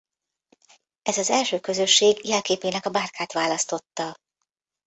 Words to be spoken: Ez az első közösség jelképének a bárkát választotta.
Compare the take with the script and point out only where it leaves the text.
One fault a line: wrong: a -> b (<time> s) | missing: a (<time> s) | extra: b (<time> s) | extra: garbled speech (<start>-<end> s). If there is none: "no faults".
no faults